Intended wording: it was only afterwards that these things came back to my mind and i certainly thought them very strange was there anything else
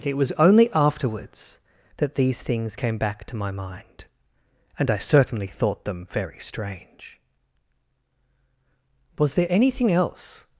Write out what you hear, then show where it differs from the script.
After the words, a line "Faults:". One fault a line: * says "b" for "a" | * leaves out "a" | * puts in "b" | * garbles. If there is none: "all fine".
it was only afterwards that these things came back to my mind and i certainly thought them very strange was there anything else
Faults:
all fine